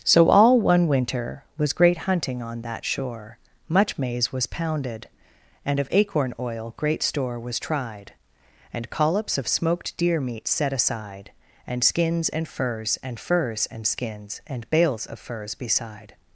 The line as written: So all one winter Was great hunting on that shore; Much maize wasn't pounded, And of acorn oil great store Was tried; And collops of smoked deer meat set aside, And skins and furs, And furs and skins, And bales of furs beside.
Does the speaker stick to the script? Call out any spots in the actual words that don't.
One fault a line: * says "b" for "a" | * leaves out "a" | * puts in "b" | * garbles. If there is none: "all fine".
* says "was" for "wasn't"